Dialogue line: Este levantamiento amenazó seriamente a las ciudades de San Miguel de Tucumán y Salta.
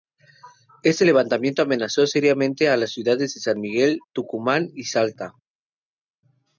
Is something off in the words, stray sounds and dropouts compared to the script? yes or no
yes